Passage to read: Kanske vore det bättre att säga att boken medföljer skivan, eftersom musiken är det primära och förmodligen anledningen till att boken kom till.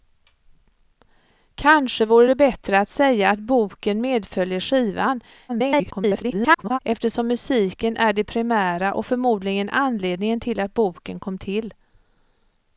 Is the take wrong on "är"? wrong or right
right